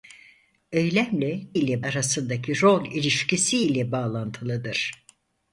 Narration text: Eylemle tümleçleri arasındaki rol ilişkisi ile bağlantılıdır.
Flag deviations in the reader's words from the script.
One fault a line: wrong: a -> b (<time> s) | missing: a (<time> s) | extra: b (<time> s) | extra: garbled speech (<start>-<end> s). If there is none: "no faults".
wrong: tümleçleri -> ile (1.5 s)